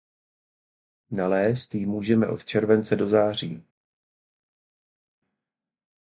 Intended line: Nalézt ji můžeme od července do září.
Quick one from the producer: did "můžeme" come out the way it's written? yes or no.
yes